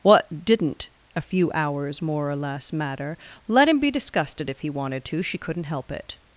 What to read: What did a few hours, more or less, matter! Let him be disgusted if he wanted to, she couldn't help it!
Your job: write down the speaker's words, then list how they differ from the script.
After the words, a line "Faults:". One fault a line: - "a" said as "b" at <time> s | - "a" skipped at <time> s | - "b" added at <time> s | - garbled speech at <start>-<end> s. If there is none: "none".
What didn't a few hours, more or less, matter! Let him be disgusted if he wanted to, she couldn't help it!
Faults:
- "did" said as "didn't" at 0.5 s